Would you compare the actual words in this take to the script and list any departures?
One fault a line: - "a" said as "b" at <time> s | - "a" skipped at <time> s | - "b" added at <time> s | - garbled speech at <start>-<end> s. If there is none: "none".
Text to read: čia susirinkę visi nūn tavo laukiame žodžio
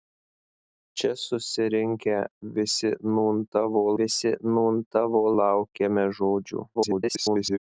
- "visi nūn tavo" added at 4.0 s
- garbled speech at 6.7-7.6 s